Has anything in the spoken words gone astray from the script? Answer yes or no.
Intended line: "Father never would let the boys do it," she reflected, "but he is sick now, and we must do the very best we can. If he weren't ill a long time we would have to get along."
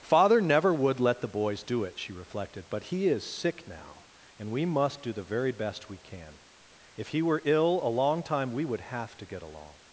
yes